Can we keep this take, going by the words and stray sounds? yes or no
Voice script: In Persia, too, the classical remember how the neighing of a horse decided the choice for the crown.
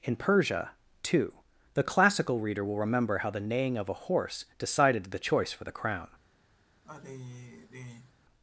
no